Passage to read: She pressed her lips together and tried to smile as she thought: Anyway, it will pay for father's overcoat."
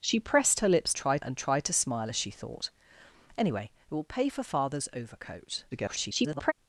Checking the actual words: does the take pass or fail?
fail